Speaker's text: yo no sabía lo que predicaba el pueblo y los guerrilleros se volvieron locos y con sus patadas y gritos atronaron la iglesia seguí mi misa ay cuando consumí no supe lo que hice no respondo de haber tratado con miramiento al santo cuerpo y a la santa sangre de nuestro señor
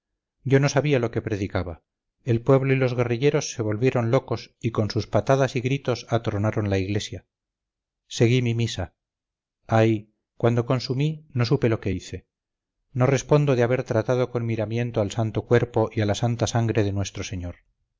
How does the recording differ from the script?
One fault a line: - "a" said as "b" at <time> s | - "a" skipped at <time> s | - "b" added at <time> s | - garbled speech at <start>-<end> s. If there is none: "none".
none